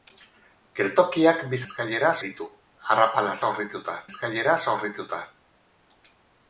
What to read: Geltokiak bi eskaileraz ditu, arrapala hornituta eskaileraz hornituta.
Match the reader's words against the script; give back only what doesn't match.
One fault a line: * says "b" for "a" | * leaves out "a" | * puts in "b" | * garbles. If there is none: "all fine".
all fine